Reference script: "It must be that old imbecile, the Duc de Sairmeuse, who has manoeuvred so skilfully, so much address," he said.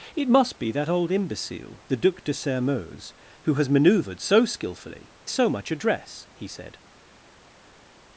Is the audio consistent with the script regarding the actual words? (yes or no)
yes